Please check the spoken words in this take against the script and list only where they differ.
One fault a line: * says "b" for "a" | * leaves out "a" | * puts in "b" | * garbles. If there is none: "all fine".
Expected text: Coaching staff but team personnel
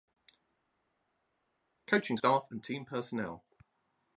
* says "and" for "but"